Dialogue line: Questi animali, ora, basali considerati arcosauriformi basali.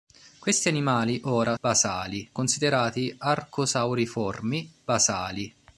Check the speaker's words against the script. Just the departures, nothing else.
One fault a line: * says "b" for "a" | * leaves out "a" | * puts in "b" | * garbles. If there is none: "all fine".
all fine